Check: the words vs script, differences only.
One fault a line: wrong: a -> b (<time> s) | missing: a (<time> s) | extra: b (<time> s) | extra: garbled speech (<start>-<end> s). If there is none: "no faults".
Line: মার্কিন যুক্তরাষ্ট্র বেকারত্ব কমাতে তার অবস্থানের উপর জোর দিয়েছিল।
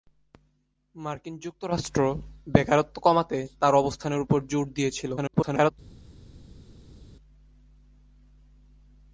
extra: garbled speech (5.2-5.7 s)